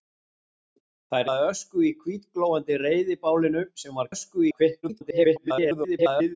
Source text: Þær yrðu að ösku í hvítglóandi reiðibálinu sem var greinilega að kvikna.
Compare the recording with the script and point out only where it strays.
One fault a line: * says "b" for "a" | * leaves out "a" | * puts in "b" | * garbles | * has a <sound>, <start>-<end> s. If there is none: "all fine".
* leaves out "yrðu"
* says "ösku" for "greinilega"
* garbles